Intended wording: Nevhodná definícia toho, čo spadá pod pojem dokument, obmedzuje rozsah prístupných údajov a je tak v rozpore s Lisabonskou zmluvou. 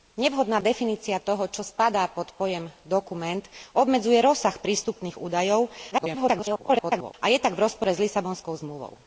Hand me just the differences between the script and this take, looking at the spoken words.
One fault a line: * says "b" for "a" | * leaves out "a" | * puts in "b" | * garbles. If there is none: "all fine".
* garbles